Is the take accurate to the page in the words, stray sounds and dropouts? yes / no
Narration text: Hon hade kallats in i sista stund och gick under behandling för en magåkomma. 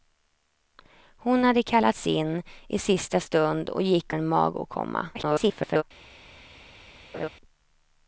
no